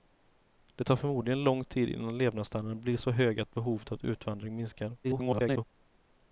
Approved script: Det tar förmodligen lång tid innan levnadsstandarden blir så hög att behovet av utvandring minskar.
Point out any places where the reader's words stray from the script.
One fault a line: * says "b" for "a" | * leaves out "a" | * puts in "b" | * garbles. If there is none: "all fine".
* garbles